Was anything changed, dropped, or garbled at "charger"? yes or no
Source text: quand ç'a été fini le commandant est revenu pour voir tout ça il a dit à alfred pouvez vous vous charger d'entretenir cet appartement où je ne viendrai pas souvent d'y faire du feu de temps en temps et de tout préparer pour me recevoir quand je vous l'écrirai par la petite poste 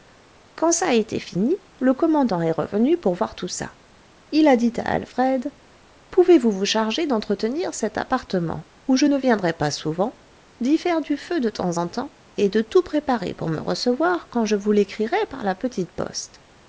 no